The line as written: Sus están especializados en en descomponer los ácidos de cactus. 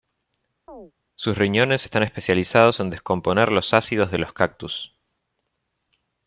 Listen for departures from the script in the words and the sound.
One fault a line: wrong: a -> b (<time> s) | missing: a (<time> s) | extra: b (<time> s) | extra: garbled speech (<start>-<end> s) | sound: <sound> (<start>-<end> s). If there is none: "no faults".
sound: chirp (0.7-0.9 s)
extra: riñones (1.4 s)
missing: en (2.9 s)
extra: los (4.2 s)